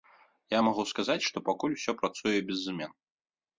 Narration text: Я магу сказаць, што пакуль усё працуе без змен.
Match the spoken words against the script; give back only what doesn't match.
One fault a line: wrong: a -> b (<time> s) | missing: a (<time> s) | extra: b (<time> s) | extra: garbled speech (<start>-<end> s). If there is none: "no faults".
no faults